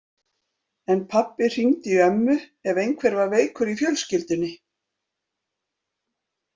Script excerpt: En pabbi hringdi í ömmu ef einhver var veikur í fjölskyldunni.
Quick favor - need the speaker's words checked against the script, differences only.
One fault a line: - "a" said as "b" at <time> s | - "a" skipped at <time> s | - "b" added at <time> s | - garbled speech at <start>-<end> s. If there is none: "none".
none